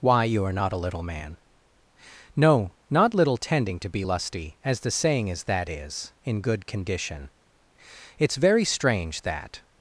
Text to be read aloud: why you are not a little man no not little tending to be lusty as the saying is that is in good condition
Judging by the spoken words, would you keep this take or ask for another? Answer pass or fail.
fail